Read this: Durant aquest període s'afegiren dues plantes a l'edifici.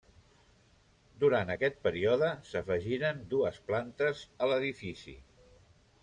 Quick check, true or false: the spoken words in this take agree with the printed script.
true